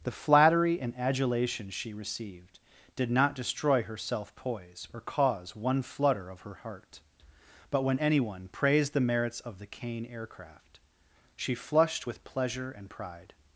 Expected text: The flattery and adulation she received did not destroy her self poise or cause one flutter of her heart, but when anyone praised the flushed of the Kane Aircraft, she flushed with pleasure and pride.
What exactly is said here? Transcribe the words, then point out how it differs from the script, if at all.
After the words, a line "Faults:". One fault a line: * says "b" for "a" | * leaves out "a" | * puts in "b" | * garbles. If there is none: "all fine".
The flattery and adulation she received did not destroy her self poise or cause one flutter of her heart, but when anyone praised the merits of the Kane Aircraft, she flushed with pleasure and pride.
Faults:
* says "merits" for "flushed"